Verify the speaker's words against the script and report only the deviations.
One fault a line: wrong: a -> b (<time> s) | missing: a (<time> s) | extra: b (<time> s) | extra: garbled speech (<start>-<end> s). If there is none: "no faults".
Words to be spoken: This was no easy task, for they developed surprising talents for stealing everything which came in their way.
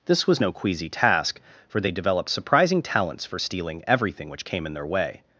wrong: easy -> queasy (0.5 s)